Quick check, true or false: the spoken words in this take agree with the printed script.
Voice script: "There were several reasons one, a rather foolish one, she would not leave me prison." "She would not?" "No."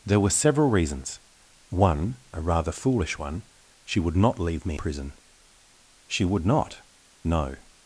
true